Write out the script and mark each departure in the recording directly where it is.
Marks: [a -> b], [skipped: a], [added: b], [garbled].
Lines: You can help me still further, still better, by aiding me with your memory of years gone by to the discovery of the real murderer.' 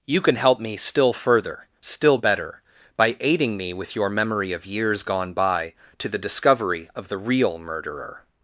You can help me still further, still better, by aiding me with your memory of years gone by to the discovery of the real murderer.'